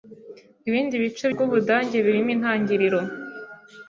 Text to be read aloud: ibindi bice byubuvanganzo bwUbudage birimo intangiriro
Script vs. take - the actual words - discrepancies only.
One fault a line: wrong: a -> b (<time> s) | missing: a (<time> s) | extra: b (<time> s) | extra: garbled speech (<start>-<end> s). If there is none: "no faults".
missing: byubuvanganzo (1.2 s)